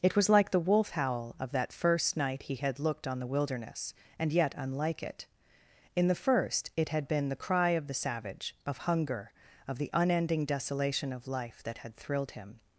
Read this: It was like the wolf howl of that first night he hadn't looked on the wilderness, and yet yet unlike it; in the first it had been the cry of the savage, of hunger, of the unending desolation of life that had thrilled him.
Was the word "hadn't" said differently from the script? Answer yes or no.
yes